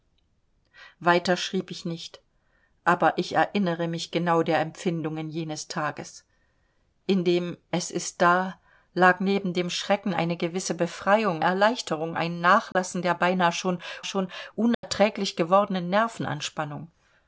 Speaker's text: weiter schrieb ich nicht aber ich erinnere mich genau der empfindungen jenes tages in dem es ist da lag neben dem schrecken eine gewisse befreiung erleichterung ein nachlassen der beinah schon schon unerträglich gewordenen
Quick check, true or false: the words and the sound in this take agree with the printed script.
false